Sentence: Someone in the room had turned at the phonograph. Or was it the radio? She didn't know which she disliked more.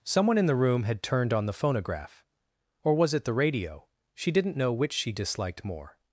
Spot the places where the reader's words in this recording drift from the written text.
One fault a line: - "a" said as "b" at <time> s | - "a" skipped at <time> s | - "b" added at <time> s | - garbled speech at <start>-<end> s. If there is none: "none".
- "at" said as "on" at 1.3 s